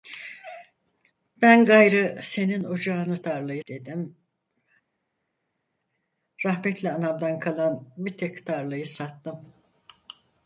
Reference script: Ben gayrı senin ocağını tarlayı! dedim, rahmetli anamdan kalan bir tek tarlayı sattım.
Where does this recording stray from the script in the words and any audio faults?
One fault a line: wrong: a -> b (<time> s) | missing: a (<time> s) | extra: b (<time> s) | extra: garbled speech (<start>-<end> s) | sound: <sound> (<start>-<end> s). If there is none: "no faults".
no faults